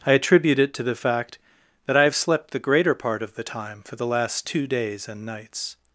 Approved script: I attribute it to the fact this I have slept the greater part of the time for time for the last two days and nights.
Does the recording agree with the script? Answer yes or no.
no